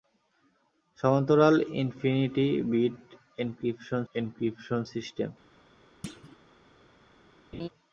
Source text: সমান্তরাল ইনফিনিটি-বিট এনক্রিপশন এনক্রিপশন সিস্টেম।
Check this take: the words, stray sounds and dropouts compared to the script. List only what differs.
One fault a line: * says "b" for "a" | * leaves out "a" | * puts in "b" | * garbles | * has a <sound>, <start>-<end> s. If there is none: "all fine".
* has a thud, 6.0-6.4 s
* has a laugh, 7.5-7.7 s